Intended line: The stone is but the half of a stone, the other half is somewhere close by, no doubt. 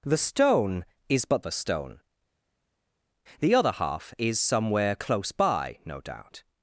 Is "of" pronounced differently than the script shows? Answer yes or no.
yes